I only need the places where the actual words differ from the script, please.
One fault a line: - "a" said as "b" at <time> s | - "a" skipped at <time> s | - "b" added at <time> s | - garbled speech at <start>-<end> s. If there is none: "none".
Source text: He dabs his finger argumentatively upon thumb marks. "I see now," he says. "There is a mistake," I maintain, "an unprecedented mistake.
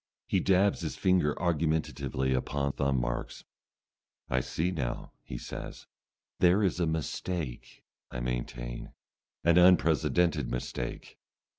none